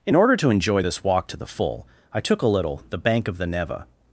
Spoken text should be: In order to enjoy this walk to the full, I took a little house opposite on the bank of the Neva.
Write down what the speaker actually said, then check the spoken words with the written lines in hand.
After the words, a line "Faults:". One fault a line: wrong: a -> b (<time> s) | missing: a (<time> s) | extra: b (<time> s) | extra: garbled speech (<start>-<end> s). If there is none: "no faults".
In order to enjoy this walk to the full, I took a little the bank of the Neva.
Faults:
missing: house opposite on (2.8 s)